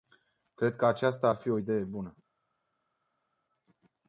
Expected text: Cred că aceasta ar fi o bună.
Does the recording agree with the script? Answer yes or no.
no